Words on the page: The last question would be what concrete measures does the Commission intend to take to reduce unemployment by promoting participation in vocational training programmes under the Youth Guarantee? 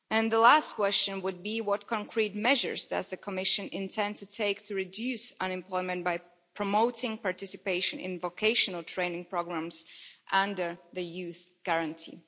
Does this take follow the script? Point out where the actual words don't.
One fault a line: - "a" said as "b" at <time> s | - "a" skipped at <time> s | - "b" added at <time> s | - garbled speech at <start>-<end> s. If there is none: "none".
none